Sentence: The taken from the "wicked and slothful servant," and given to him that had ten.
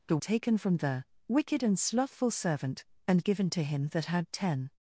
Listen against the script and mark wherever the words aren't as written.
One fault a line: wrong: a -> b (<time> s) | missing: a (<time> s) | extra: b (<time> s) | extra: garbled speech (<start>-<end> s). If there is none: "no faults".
no faults